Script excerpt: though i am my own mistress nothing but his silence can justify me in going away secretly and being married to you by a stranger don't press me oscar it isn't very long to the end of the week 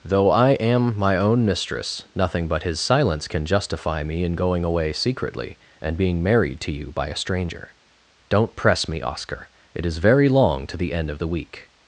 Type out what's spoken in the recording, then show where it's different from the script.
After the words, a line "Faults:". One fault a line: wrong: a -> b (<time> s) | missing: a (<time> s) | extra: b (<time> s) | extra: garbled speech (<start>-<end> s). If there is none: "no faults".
though i am my own mistress nothing but his silence can justify me in going away secretly and being married to you by a stranger don't press me oscar it is very long to the end of the week
Faults:
wrong: isn't -> is (9.8 s)